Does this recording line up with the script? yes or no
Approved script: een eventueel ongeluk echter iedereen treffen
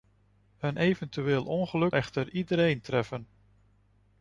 yes